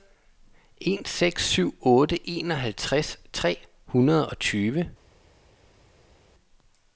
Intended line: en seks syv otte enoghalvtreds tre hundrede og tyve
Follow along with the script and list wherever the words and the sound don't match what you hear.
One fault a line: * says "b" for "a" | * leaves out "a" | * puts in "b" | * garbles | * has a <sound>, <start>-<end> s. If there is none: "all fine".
all fine